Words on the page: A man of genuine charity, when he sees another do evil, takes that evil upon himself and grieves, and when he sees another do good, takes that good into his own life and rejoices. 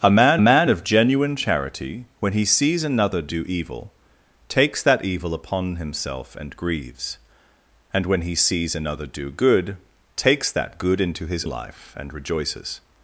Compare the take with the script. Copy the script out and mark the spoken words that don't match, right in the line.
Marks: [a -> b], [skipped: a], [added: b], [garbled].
A man [added: man] of genuine charity, when he sees another do evil, takes that evil upon himself and grieves, and when he sees another do good, takes that good into his [skipped: own] life and rejoices.